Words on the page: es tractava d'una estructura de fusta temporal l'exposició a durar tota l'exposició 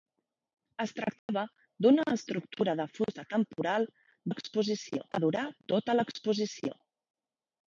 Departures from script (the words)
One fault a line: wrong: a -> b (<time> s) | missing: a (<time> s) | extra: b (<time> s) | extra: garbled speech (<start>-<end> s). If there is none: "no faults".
no faults